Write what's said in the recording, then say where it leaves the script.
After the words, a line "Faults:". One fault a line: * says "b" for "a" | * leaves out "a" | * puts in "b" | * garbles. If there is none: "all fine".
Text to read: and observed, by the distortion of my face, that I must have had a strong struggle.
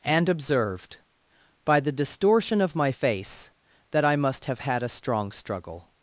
and observed, by the distortion of my face, that I must have had a strong struggle.
Faults:
all fine